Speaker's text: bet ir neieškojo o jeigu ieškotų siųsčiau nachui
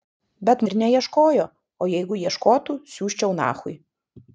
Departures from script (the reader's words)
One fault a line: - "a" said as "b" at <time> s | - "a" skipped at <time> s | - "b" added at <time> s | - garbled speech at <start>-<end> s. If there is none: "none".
none